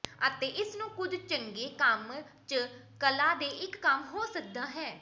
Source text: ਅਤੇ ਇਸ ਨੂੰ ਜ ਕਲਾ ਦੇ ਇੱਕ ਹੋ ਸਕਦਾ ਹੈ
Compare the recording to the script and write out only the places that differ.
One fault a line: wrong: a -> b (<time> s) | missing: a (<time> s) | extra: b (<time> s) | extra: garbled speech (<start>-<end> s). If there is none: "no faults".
extra: ਕੁਝ ਚੰਗੇ ਕੰਮ (0.9 s)
extra: ਕੰਮ (3.8 s)